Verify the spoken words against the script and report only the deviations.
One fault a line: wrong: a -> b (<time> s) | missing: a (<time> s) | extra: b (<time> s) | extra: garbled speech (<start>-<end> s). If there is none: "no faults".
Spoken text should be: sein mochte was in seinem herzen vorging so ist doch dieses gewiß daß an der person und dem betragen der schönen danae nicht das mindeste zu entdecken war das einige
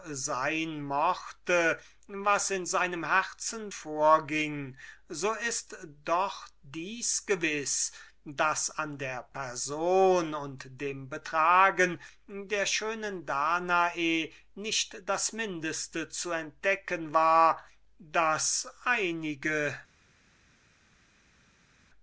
no faults